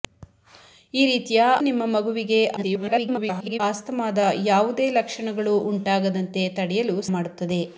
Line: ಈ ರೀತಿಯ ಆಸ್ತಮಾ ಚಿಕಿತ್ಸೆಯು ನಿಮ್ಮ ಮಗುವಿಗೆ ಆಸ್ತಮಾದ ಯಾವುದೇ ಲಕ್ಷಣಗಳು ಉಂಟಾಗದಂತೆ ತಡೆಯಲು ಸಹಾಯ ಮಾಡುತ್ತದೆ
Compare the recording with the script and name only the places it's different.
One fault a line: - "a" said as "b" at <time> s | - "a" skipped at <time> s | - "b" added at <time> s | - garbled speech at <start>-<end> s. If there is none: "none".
- "ಆಸ್ತಮಾ ಚಿಕಿತ್ಸೆಯು" skipped at 1.4 s
- garbled speech at 2.6-3.6 s
- "ಸಹಾಯ" skipped at 7.0 s